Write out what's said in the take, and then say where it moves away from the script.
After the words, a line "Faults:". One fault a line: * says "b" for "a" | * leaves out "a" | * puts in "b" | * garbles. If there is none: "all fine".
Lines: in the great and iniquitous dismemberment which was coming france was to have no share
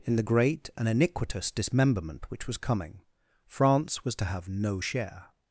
in the great and iniquitous dismemberment which was coming france was to have no share
Faults:
all fine